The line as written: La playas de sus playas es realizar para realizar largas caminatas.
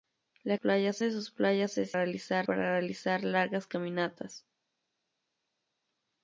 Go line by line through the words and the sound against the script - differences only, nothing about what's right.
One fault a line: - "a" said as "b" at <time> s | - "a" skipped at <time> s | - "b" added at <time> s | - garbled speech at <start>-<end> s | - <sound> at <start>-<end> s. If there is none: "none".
none